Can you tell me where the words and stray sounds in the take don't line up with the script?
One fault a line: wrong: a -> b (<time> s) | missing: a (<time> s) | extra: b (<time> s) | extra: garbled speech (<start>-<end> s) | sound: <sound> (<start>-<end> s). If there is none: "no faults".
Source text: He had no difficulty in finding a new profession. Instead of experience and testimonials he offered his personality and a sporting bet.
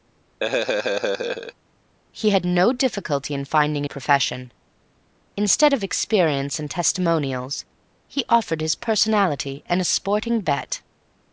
sound: laugh (0.4-1.5 s)
missing: new (3.9 s)